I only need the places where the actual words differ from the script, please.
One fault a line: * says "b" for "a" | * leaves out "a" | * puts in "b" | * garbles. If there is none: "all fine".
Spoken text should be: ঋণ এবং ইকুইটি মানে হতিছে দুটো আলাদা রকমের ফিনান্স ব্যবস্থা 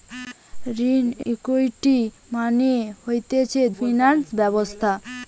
* leaves out "এবং"
* leaves out "দুটো আলাদা রকমের"